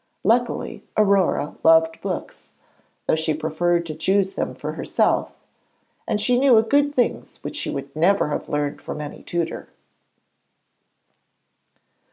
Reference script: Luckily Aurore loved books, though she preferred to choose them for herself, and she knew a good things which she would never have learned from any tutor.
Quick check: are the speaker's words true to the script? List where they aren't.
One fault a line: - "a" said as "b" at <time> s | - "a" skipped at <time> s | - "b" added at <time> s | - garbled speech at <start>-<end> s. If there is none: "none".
none